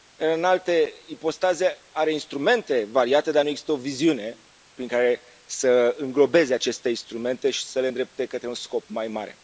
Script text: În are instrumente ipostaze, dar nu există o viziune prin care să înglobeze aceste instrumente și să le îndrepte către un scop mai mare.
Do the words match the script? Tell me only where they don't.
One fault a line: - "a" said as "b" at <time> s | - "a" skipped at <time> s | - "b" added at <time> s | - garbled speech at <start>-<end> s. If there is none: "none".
- "alte ipostaze" added at 0.4 s
- "ipostaze" said as "variate" at 2.9 s